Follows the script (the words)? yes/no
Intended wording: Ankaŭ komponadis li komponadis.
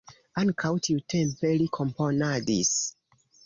no